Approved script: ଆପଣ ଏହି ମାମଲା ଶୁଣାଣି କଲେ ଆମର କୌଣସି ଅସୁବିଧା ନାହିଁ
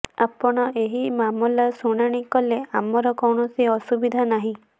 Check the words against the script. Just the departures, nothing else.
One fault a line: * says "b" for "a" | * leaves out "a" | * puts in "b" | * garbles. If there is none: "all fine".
all fine